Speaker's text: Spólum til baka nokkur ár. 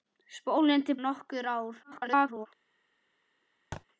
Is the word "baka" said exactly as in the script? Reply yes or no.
no